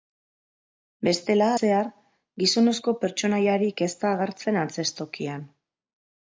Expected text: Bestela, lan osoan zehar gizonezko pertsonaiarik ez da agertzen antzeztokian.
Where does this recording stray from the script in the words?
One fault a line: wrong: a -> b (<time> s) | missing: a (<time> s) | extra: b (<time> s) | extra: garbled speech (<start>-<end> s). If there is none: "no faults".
missing: lan osoan (1.5 s)